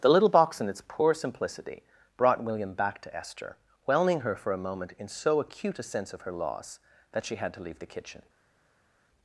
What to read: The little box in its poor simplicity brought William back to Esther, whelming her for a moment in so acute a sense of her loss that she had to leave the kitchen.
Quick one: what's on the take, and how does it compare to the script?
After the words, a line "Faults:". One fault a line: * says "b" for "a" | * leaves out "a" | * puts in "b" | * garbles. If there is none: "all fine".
The little box in its poor simplicity brought William back to Esther, whelming her for a moment in so acute a sense of her loss that she had to leave the kitchen.
Faults:
all fine